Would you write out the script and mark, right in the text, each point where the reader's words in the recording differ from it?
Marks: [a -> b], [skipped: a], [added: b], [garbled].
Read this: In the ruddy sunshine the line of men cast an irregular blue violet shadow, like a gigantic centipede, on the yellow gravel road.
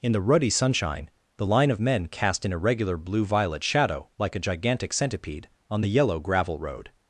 In the ruddy sunshine the line of men cast an irregular blue violet shadow, like a gigantic centipede, on the yellow gravel road.